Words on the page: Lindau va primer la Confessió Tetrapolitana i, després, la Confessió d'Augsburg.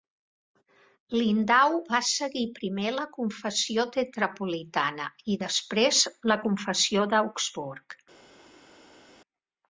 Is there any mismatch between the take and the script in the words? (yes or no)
yes